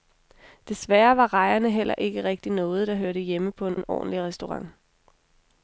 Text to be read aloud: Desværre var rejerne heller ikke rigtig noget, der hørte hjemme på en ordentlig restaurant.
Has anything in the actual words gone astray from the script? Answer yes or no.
yes